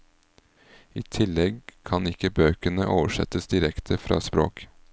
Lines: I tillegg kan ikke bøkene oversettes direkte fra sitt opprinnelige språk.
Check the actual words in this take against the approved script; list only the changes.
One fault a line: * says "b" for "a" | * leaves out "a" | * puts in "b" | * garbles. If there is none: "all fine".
* leaves out "sitt opprinnelige"